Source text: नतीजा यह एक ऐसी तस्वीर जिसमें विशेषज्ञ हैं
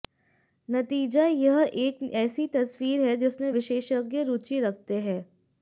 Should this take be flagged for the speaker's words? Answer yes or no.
yes